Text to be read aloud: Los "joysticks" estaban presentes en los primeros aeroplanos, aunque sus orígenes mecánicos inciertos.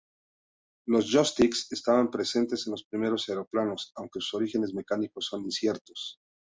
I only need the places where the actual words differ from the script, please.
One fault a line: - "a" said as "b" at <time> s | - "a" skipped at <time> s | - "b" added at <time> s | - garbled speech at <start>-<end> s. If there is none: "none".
- "son" added at 5.3 s